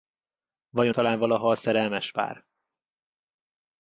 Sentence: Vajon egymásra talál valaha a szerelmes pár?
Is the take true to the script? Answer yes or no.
no